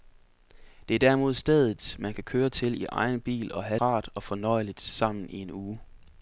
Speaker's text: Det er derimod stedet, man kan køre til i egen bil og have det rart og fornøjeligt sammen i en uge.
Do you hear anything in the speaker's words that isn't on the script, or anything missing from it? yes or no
yes